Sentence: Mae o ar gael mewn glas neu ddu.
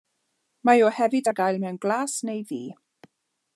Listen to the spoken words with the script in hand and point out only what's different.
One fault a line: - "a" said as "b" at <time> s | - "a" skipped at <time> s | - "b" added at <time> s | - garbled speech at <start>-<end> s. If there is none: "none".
- "hefyd" added at 1.0 s